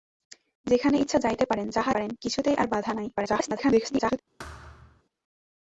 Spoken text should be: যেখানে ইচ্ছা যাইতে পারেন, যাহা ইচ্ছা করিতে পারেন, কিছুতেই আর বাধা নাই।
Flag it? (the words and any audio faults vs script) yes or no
yes